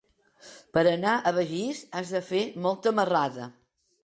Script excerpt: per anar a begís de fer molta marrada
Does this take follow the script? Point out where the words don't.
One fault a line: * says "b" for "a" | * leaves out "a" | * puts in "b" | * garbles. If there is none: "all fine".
* puts in "has"